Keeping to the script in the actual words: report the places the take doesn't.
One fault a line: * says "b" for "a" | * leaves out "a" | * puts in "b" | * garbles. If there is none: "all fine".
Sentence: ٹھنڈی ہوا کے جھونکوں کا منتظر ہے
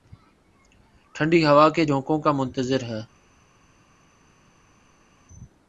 all fine